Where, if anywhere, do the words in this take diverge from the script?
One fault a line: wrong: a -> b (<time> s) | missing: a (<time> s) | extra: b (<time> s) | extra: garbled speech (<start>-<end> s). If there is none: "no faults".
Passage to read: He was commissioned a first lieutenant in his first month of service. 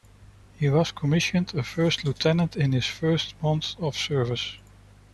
no faults